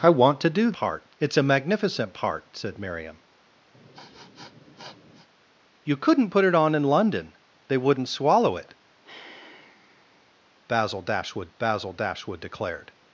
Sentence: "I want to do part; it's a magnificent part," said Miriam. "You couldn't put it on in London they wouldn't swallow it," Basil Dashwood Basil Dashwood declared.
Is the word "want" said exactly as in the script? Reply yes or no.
yes